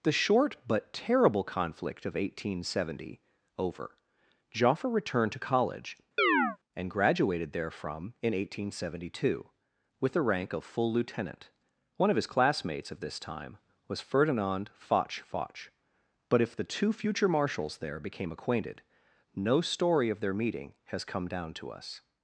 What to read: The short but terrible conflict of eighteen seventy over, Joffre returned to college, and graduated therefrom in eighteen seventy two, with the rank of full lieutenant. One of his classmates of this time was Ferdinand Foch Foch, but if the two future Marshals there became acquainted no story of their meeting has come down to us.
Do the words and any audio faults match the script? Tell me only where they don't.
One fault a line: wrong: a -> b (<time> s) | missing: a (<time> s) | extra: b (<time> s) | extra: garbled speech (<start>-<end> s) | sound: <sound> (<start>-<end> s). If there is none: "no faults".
sound: chirp (6.2-6.6 s)